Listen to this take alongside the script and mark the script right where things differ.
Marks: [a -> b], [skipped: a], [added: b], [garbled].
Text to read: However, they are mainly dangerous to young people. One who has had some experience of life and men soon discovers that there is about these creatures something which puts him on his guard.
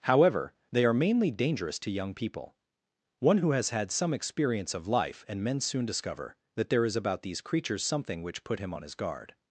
However, they are mainly dangerous to young people. One who has had some experience of life and men soon [discovers -> discover] that there is about these creatures something which [puts -> put] him on his guard.